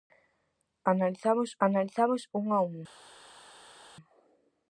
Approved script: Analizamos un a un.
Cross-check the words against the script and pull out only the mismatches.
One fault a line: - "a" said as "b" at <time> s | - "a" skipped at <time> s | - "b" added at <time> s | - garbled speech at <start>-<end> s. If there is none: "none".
- "analizamos" added at 1.7 s